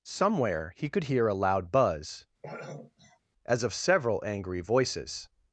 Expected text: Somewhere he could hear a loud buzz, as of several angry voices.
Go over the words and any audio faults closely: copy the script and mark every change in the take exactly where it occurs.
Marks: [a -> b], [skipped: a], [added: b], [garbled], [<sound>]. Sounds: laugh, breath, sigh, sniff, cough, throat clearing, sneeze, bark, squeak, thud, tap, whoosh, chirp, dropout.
Somewhere he could hear a loud buzz, [throat clearing] as of several angry voices.